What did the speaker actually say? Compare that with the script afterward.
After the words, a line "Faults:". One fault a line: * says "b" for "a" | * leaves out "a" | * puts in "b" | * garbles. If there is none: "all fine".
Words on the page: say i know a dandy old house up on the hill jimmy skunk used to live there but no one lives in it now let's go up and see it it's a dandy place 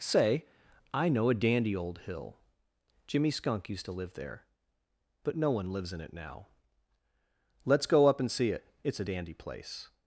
say i know a dandy old hill jimmy skunk used to live there but no one lives in it now let's go up and see it it's a dandy place
Faults:
* leaves out "house up on the"